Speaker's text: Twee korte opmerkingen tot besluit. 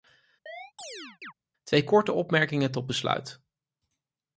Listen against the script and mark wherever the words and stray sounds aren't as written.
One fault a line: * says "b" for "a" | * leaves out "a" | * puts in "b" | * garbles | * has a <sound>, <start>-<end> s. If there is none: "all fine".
* has a chirp, 0.5-1.3 s